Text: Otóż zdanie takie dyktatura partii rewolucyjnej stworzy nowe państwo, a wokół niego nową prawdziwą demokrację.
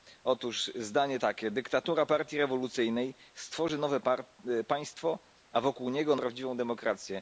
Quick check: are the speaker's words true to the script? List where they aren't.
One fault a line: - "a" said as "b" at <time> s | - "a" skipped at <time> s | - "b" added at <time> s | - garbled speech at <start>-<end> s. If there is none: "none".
- "nową" skipped at 6.2 s